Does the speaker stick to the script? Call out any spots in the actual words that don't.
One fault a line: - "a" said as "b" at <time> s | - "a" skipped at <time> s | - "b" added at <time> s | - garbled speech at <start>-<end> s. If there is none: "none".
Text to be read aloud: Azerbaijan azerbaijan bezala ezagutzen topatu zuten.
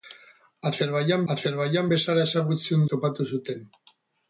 none